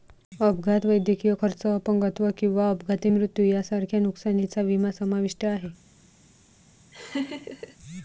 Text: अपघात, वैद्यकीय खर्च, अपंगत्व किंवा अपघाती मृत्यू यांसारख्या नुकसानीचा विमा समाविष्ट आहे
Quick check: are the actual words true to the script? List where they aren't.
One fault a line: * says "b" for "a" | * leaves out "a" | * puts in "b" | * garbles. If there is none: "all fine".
all fine